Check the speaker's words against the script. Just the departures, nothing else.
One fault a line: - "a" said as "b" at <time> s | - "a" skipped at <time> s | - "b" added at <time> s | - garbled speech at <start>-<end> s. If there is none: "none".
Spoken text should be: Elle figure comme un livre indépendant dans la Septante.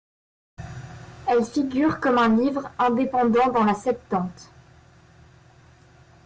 none